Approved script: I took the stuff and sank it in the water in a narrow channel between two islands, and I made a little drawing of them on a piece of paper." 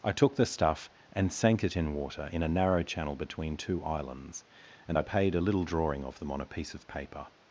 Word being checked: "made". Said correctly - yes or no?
no